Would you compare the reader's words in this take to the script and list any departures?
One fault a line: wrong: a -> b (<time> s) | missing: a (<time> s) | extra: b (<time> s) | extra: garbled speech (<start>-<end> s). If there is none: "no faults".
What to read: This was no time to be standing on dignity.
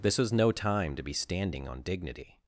no faults